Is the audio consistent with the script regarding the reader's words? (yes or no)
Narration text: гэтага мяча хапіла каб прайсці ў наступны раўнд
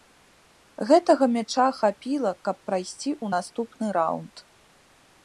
yes